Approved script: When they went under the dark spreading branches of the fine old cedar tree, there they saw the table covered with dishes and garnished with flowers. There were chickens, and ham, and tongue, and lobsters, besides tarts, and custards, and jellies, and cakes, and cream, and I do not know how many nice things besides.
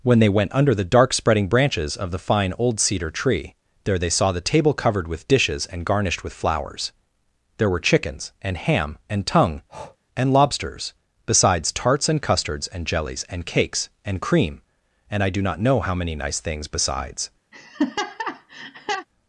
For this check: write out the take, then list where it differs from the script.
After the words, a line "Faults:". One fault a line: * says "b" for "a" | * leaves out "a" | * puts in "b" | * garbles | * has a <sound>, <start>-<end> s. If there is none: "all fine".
When they went under the dark spreading branches of the fine old cedar tree, there they saw the table covered with dishes and garnished with flowers. There were chickens, and ham, and tongue, and lobsters, besides tarts, and custards, and jellies, and cakes, and cream, and I do not know how many nice things besides.
Faults:
* has a breath, 9.7-10.0 s
* has a laugh, 17.5-19.1 s